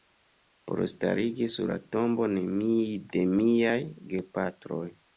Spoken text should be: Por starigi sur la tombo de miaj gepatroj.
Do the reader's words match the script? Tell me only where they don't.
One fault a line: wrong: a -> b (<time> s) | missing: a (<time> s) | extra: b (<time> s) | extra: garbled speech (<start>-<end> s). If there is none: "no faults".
no faults